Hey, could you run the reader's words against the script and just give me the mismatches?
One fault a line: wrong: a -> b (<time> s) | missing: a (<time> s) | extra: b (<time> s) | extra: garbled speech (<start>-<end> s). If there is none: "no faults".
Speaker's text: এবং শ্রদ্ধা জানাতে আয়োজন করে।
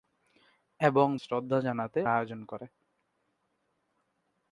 no faults